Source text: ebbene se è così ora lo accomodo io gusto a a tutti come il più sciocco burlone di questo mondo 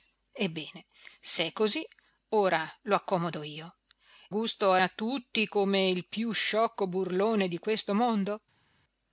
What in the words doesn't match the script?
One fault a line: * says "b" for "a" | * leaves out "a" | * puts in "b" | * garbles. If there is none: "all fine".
all fine